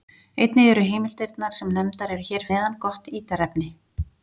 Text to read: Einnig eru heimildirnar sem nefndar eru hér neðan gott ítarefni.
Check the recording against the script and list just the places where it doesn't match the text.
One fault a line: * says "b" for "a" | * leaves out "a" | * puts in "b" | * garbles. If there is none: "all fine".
all fine